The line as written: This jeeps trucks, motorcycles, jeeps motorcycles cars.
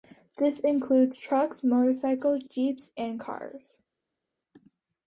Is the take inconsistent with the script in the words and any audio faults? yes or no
yes